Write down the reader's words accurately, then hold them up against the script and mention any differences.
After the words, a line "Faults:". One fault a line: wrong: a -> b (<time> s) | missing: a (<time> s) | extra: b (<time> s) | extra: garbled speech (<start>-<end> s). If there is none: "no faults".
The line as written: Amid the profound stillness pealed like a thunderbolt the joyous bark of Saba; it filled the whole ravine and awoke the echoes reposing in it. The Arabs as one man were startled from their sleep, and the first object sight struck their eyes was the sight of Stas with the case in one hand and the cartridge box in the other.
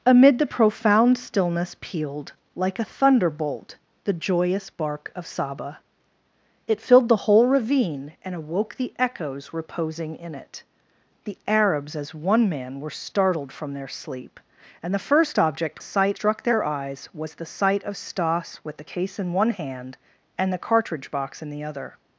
Amid the profound stillness pealed like a thunderbolt the joyous bark of Saba; it filled the whole ravine and awoke the echoes reposing in it. The Arabs as one man were startled from their sleep, and the first object sight struck their eyes was the sight of Stas with the case in one hand and the cartridge box in the other.
Faults:
no faults